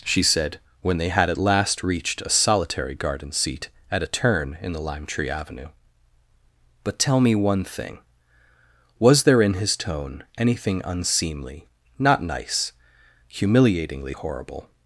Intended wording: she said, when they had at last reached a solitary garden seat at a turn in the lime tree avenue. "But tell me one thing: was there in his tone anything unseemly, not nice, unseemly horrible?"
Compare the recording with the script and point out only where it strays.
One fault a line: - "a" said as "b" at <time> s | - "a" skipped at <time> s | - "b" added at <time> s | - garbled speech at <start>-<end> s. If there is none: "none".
- "unseemly" said as "humiliatingly" at 13.3 s